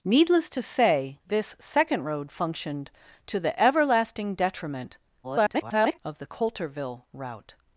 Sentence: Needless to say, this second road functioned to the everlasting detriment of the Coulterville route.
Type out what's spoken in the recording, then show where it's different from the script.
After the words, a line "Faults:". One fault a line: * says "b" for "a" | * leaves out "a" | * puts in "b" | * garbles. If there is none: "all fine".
Needless to say, this second road functioned to the everlasting detriment [garbled] of the Coulterville route.
Faults:
* garbles